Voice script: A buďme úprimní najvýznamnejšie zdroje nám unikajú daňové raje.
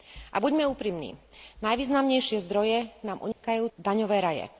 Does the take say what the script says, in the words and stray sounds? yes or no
no